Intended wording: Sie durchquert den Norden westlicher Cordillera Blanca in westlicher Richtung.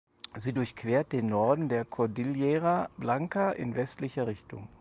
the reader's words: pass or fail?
fail